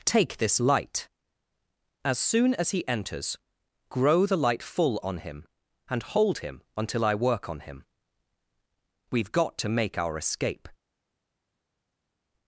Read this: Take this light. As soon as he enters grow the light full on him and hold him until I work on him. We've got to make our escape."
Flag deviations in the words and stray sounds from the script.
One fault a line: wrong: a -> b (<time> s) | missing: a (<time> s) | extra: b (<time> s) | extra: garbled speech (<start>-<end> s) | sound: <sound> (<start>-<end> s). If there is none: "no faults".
no faults